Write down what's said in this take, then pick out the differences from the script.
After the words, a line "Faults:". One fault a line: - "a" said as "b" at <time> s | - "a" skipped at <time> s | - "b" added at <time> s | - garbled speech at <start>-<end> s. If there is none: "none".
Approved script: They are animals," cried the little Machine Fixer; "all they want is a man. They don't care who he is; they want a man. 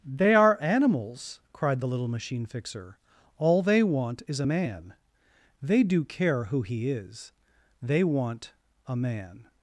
They are animals," cried the little Machine Fixer; "all they want is a man. They do care who he is; they want a man.
Faults:
- "don't" said as "do" at 5.8 s